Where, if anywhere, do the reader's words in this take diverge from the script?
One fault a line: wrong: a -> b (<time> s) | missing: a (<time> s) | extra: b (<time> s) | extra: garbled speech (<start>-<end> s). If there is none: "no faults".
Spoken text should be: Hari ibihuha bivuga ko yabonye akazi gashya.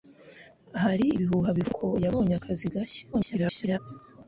extra: garbled speech (3.1-3.8 s)